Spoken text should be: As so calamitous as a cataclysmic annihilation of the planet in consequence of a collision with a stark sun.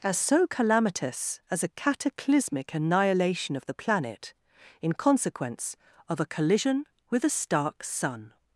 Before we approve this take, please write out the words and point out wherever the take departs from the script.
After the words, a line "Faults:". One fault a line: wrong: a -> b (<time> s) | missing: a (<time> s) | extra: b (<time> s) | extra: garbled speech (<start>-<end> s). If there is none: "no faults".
As so calamitous as a cataclysmic annihilation of the planet in consequence of a collision with a stark sun.
Faults:
no faults